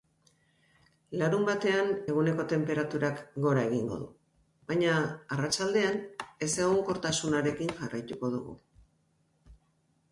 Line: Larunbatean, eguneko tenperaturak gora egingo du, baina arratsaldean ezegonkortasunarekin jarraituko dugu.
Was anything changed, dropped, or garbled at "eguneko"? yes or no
no